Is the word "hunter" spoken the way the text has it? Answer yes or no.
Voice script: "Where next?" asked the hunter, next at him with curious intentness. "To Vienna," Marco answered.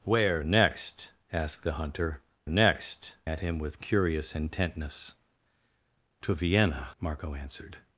yes